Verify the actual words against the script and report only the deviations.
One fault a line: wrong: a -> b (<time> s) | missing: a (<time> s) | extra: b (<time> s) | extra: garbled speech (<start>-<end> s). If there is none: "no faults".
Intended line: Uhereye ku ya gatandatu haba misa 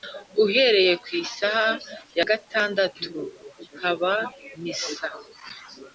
extra: isaha (1.2 s)